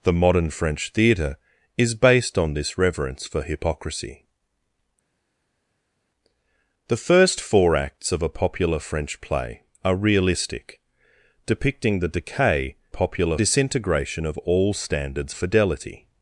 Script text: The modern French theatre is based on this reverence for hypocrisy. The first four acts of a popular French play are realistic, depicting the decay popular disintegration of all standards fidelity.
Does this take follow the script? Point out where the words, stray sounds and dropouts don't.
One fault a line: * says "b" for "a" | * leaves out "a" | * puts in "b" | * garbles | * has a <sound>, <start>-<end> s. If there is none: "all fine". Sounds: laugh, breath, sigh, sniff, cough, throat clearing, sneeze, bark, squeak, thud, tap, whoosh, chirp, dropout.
all fine